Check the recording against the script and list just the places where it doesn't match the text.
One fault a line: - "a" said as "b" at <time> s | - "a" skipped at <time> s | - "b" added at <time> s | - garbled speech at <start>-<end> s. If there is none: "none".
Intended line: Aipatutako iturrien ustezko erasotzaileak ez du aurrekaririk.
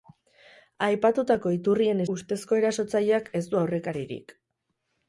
none